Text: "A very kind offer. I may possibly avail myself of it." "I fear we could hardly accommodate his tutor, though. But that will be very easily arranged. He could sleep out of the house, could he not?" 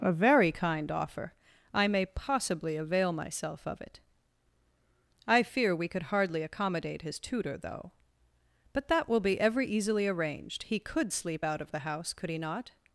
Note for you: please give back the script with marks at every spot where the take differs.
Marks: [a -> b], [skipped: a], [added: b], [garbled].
"A very kind offer. I may possibly avail myself of it." "I fear we could hardly accommodate his tutor, though. But that will be [very -> every] easily arranged. He could sleep out of the house, could he not?"